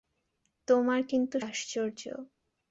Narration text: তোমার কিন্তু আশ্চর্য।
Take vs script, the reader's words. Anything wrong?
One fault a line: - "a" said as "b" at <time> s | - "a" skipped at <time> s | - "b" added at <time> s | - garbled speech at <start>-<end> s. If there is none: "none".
none